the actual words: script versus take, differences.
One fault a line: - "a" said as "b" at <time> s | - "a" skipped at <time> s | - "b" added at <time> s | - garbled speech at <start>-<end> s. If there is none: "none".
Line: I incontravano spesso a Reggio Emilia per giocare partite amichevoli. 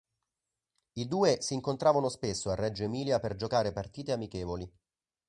- "due si" added at 1.1 s